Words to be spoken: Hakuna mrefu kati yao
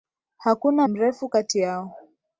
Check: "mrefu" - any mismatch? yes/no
no